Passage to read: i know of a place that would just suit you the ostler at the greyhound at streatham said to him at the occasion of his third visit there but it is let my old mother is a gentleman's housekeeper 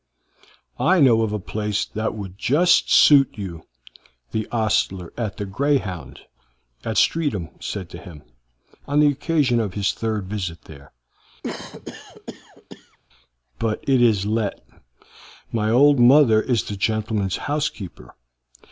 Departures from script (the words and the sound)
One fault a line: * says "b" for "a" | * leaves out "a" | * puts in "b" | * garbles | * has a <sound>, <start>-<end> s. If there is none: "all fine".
* says "on" for "at"
* has a cough, 11.4-13.0 s
* says "the" for "a"